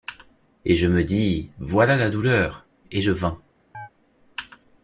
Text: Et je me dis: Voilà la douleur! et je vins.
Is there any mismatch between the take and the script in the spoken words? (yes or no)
no